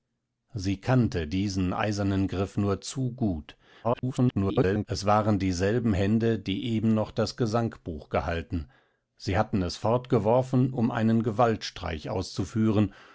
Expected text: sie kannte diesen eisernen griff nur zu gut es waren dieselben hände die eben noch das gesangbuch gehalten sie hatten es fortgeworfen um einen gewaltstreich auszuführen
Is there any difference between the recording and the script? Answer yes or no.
yes